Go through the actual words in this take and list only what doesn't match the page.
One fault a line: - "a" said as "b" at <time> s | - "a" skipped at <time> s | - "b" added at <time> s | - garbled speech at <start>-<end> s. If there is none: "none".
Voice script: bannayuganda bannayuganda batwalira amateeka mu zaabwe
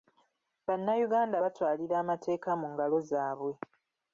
- "bannayuganda" skipped at 1.4 s
- "ngalo" added at 2.7 s